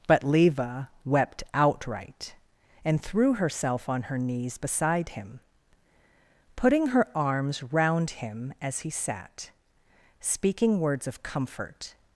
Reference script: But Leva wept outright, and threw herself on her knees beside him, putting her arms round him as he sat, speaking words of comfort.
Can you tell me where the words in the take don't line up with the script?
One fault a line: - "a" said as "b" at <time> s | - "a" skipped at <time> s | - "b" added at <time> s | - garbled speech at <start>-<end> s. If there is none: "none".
none